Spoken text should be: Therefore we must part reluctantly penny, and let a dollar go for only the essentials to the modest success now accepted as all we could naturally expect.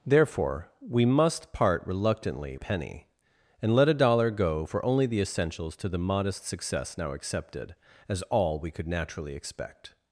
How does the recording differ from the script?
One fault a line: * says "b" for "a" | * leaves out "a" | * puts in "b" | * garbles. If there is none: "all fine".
all fine